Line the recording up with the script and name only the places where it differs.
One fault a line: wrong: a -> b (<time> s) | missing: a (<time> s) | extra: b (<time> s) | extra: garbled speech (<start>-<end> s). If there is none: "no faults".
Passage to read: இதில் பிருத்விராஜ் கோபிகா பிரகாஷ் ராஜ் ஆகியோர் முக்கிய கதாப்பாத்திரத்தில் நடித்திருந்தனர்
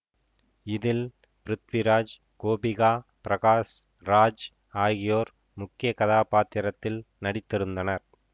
no faults